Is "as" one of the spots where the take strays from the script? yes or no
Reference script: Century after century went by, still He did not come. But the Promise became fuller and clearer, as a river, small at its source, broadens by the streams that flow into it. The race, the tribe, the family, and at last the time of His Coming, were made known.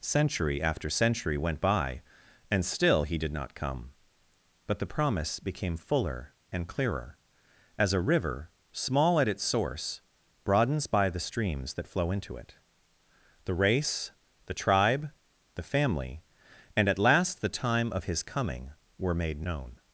no